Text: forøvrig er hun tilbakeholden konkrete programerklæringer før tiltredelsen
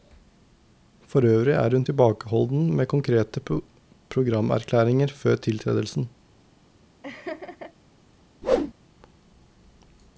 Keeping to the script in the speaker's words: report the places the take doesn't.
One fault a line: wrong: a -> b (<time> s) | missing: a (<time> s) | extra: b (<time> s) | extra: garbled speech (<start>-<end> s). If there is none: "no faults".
extra: med (2.8 s)